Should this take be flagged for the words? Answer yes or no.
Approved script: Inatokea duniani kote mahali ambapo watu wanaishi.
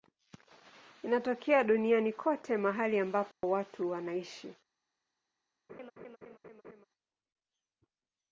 no